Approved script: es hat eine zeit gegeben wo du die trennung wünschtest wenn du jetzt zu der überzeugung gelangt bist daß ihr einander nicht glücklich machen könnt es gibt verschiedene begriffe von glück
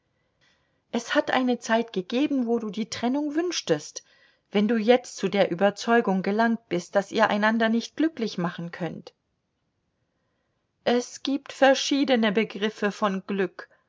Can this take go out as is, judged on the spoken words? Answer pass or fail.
pass